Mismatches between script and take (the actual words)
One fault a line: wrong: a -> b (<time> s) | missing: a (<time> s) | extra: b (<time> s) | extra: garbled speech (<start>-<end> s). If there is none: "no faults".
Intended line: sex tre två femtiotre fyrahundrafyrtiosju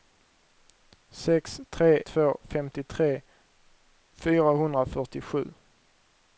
no faults